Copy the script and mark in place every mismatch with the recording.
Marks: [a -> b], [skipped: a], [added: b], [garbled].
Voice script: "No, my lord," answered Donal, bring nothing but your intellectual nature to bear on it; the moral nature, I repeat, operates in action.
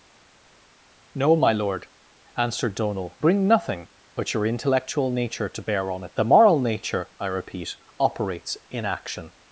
"No, my lord," answered Donal, bring nothing but your intellectual nature to bear on it; the moral nature, I repeat, operates in action.